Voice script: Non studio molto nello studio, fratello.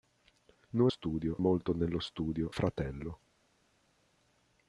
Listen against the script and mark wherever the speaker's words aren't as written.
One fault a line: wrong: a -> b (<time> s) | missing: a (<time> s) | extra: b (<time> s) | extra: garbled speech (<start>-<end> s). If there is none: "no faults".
no faults